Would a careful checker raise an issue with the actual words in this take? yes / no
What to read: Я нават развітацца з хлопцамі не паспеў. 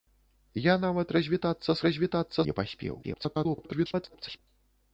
yes